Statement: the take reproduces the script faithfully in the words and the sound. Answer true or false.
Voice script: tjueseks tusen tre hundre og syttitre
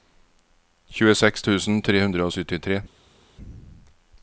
true